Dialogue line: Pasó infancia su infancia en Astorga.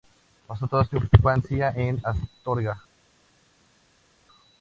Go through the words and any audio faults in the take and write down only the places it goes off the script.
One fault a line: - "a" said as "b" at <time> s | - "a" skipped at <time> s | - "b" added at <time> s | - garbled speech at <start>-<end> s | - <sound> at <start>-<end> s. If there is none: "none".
- "infancia" said as "toda" at 0.7 s